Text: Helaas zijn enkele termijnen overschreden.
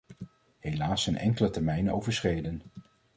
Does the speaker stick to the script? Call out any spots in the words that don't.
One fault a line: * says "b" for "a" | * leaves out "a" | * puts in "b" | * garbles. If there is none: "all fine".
all fine